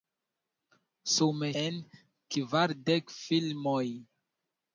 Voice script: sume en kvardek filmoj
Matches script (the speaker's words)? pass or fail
pass